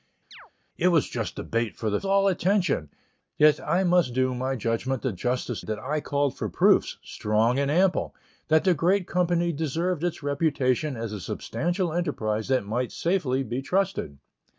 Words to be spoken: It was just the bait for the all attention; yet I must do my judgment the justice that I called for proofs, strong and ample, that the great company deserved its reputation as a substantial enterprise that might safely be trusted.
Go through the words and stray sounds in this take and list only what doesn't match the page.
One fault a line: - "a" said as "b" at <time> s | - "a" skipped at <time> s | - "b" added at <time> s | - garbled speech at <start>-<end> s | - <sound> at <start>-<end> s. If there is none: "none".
- chirp at 0.3-0.5 s